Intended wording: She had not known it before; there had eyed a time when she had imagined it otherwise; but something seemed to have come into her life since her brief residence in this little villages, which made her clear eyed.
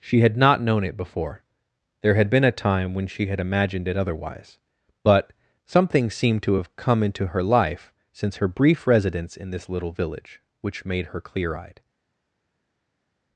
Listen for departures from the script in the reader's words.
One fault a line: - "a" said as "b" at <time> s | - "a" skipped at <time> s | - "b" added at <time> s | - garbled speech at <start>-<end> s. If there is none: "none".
- "eyed" said as "been" at 2.3 s
- "villages" said as "village" at 9.9 s